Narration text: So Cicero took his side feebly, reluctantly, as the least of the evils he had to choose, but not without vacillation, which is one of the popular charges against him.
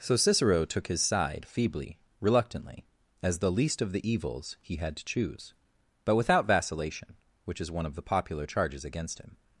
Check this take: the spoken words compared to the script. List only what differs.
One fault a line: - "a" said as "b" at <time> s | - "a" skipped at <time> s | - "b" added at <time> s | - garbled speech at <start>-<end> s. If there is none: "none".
- "not" skipped at 6.2 s